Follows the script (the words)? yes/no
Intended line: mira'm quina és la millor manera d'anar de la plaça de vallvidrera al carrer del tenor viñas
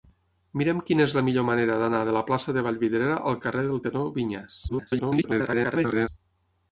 no